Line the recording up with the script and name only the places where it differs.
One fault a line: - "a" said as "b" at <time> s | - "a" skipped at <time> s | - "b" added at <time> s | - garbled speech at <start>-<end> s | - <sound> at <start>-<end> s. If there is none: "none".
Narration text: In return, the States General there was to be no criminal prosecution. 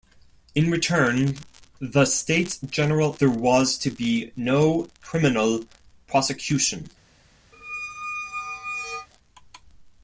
- squeak at 7.5-9.1 s